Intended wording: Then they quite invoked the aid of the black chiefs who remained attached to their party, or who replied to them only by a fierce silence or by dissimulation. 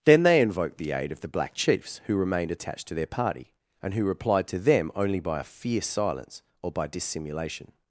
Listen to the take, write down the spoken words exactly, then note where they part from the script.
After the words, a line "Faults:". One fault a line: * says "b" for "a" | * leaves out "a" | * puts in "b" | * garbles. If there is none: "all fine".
Then they invoked the aid of the black chiefs who remained attached to their party, and who replied to them only by a fierce silence or by dissimulation.
Faults:
* leaves out "quite"
* says "and" for "or"